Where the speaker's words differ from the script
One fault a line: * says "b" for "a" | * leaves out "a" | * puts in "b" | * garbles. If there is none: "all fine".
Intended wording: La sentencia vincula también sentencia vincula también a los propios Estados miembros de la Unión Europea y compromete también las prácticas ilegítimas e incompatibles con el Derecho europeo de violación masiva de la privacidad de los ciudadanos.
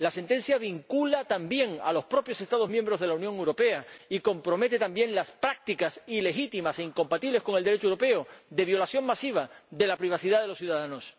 * leaves out "sentencia vincula también"